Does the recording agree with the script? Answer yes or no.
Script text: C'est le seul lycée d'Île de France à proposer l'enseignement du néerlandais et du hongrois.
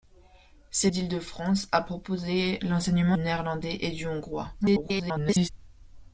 no